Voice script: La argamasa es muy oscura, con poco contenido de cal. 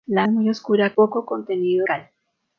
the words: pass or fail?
fail